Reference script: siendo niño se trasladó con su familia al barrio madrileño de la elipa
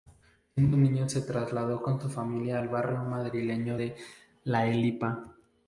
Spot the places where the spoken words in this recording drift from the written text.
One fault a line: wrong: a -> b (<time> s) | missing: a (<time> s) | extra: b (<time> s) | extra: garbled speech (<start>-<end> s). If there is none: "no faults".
no faults